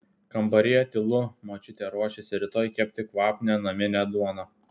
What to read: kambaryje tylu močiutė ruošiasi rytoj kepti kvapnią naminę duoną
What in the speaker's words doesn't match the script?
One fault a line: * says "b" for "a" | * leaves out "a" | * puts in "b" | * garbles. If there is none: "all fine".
all fine